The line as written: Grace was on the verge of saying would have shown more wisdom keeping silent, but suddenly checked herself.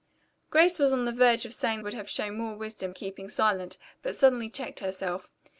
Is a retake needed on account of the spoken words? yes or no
no